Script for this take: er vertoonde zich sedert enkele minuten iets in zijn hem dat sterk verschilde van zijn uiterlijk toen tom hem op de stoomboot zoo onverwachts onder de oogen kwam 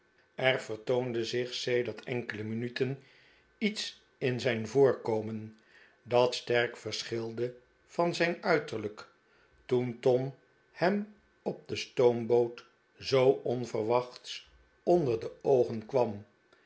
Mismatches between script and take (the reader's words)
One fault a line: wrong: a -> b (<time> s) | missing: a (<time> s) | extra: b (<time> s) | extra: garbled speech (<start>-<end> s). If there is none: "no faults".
wrong: hem -> voorkomen (4.7 s)